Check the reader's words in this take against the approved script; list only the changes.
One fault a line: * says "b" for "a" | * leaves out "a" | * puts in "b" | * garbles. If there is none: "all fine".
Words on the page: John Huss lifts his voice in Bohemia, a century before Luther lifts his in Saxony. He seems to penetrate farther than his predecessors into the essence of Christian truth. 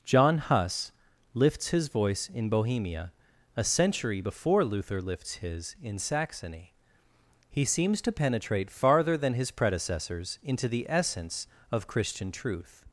all fine